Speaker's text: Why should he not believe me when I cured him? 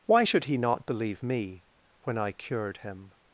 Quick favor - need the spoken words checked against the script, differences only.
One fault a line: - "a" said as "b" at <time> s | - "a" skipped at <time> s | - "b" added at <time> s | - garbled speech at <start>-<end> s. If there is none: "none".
none